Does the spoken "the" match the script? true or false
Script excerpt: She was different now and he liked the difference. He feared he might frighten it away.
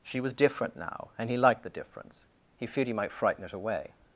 true